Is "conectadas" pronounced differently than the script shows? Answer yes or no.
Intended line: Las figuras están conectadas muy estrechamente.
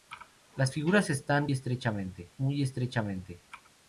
yes